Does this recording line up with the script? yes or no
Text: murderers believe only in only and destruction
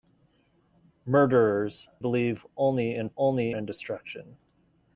yes